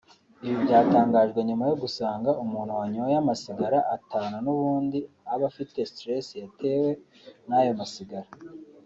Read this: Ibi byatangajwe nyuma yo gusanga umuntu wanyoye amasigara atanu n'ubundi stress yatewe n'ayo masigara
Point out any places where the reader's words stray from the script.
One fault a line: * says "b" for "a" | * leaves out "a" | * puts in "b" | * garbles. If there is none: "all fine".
* puts in "aba afite"